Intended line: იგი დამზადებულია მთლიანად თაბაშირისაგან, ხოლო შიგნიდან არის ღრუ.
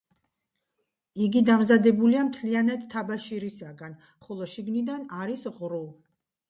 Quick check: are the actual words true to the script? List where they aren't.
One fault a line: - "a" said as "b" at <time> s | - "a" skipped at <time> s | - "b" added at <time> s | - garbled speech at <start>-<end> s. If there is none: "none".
none